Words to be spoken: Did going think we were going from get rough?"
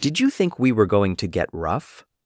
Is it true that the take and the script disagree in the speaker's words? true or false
true